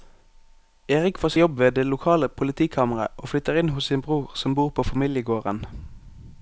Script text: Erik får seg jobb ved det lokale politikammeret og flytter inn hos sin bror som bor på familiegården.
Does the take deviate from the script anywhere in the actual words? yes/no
yes